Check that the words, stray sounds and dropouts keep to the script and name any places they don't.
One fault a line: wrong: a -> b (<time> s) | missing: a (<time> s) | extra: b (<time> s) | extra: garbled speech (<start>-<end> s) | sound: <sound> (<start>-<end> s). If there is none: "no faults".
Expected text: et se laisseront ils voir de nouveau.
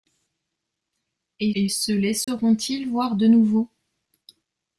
extra: et (1.5 s)
sound: dropout (2.2-2.3 s)